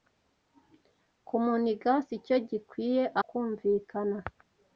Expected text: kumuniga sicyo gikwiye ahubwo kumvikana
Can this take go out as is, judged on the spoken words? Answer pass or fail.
fail